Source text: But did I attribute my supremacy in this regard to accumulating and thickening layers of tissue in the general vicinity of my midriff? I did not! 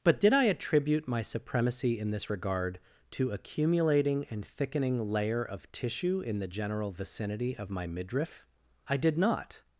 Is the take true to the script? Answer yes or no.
no